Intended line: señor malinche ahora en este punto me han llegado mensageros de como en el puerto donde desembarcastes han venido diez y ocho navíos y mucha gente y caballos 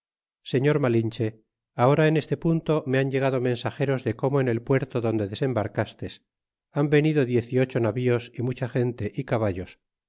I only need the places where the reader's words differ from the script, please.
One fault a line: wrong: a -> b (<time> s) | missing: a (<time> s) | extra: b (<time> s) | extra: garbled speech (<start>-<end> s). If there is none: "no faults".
no faults